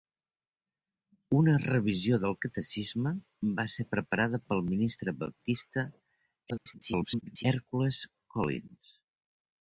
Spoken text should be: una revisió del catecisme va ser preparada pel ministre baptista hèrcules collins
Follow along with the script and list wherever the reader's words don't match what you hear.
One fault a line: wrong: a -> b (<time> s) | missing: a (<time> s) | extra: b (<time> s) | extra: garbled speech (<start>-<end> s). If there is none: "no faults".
extra: garbled speech (6.5-7.4 s)